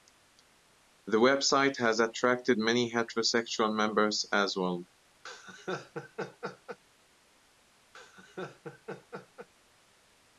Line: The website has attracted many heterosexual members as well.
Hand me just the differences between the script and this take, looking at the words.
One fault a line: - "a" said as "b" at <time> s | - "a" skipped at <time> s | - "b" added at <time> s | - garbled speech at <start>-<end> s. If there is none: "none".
none